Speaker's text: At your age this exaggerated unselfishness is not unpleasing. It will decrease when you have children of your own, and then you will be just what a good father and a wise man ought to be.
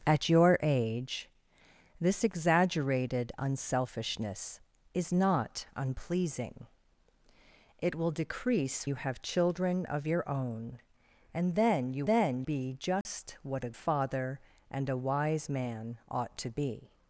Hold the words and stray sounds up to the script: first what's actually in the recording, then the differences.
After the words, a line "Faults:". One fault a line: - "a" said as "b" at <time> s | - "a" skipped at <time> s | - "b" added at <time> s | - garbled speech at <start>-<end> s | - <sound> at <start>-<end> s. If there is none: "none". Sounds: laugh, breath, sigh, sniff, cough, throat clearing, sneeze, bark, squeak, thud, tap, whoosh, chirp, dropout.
At your age this exaggerated unselfishness is not unpleasing. It will decrease you have children of your own, and then you then be just what a father and a wise man ought to be.
Faults:
- "when" skipped at 8.9 s
- "will" said as "then" at 12.1 s
- dropout at 13.0-13.1 s
- "good" skipped at 13.7 s